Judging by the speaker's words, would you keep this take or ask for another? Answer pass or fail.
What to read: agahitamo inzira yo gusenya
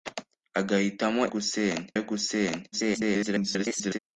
fail